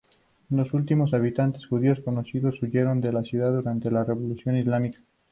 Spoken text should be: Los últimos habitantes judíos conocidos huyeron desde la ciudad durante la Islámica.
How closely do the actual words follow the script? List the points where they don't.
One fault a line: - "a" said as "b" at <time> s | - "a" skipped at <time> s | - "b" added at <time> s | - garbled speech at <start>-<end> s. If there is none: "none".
- "desde" said as "de" at 3.0 s
- "Revolución" added at 4.0 s